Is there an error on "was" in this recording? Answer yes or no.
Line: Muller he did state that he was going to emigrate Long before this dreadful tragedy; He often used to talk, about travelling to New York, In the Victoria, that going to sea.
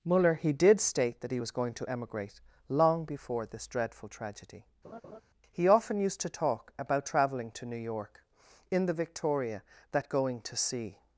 no